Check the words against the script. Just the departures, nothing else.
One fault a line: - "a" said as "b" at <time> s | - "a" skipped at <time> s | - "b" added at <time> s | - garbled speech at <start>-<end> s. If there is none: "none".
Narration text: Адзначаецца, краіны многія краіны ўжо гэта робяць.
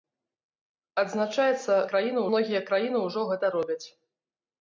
none